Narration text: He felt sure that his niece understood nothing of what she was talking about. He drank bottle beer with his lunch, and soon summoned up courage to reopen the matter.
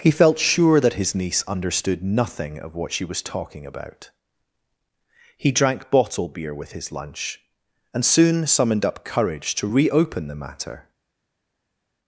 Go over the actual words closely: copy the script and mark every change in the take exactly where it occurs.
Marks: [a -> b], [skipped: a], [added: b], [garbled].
He felt sure that his niece understood nothing of what she was talking about. He drank bottle beer with his lunch, and soon summoned up courage to reopen the matter.